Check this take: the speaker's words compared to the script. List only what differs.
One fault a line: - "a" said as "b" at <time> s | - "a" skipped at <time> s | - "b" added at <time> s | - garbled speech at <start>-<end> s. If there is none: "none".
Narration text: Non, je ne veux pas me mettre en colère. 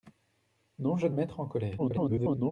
- "veux pas me" skipped at 1.1 s
- garbled speech at 1.8-2.5 s